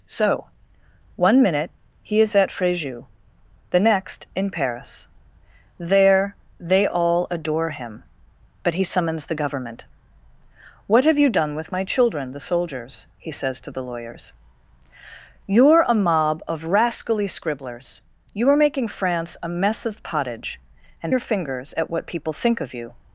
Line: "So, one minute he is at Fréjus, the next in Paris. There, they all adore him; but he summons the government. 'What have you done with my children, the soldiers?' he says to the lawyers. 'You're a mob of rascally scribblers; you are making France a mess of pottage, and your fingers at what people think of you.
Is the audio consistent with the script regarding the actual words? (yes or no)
yes